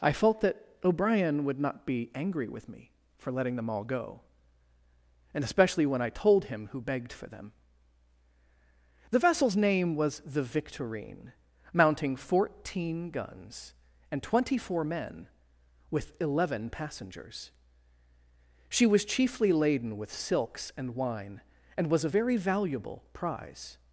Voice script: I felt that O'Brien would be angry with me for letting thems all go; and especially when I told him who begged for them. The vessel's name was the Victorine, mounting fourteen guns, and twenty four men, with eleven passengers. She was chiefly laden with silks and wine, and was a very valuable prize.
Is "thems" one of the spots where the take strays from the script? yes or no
yes